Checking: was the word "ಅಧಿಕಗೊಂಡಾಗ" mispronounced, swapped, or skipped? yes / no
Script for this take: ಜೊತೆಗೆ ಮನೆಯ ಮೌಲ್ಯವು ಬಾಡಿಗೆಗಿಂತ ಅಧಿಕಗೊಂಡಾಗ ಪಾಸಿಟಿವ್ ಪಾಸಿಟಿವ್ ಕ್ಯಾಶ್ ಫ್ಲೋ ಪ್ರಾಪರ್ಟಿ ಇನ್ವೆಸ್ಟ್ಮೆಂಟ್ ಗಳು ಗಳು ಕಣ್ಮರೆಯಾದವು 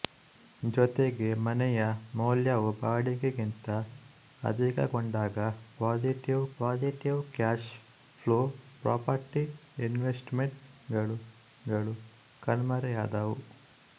no